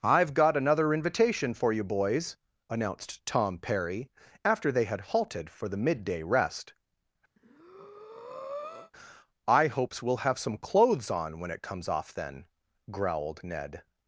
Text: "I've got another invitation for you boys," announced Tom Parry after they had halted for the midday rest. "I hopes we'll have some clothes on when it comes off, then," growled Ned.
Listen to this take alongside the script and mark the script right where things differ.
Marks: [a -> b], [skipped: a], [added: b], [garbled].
"I've got another invitation for you boys," announced Tom Parry after they had halted for the midday rest. "I hopes we'll have some clothes on when it comes off, then," growled Ned.